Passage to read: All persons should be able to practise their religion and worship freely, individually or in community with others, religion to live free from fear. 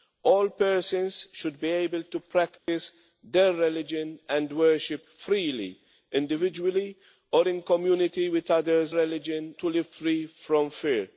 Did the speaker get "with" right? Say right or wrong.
right